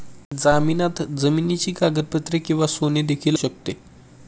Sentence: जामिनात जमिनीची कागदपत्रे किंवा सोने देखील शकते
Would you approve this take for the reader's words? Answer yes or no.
yes